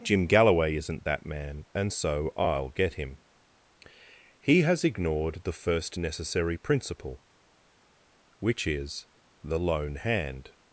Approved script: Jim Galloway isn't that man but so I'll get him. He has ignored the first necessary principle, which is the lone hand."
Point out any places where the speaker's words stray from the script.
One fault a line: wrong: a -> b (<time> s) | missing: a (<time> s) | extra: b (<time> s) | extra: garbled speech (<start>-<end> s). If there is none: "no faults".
wrong: but -> and (1.7 s)